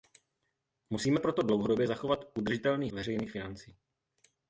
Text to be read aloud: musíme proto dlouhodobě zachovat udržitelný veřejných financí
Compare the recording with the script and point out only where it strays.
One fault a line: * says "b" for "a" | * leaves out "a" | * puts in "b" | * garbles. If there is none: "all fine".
all fine